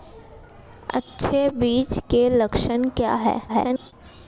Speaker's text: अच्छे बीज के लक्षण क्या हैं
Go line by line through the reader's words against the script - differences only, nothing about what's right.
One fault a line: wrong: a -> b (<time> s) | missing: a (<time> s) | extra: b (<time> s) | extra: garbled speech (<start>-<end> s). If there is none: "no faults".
extra: garbled speech (3.5-3.9 s)